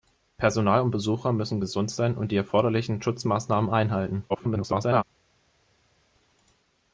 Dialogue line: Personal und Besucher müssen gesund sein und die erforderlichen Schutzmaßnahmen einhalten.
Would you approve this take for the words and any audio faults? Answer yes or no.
no